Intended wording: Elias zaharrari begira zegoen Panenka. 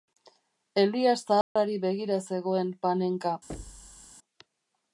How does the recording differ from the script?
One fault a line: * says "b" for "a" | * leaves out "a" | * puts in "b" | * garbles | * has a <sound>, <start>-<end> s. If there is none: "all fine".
* has a dropout, 1.4-1.6 s
* has a thud, 3.5-4.1 s